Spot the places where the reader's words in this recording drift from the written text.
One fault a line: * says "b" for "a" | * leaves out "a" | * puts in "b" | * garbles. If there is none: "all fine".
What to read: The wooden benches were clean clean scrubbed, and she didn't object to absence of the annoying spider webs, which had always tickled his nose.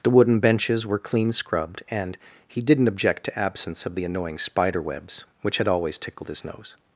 * leaves out "clean"
* says "he" for "she"